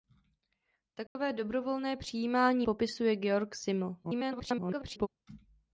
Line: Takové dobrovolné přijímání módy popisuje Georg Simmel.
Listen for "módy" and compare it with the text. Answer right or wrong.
wrong